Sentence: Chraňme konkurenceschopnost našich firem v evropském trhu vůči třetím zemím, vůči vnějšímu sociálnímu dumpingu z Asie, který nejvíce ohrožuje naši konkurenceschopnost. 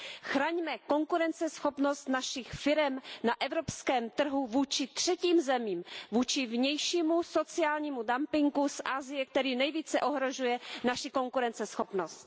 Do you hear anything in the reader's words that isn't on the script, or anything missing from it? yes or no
yes